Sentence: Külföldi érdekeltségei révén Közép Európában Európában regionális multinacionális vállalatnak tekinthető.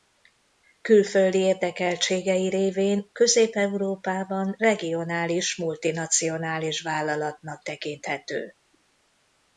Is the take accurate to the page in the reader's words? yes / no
no